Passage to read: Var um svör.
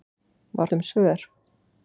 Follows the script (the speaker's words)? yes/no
yes